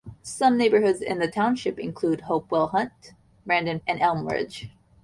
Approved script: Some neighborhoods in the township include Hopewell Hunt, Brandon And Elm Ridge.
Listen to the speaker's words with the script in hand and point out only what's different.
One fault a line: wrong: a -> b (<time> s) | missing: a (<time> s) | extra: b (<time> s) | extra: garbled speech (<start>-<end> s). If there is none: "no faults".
no faults